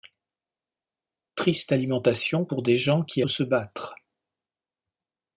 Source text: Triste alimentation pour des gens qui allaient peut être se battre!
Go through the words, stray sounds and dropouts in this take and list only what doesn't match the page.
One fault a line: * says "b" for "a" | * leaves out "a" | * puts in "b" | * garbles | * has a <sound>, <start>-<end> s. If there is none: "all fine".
* leaves out "allaient peut être"